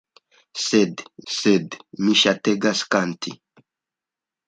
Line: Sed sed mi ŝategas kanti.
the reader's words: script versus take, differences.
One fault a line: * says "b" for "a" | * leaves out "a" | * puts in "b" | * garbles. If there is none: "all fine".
all fine